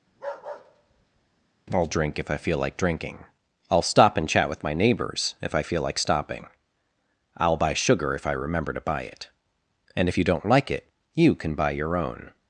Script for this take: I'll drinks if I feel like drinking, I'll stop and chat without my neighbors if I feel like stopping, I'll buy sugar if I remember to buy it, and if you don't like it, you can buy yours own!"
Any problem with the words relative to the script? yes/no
yes